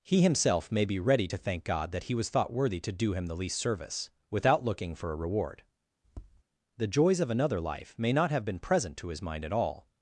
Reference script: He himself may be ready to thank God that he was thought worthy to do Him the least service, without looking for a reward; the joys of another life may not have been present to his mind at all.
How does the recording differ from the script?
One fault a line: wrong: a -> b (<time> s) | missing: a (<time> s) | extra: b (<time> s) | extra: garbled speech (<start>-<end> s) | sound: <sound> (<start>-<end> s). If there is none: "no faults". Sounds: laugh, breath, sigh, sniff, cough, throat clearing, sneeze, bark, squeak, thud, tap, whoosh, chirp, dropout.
sound: tap (6.0-6.4 s)